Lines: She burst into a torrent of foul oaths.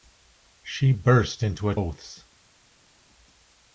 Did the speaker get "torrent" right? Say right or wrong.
wrong